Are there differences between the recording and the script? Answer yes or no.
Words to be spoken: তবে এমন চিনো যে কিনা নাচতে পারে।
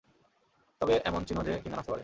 no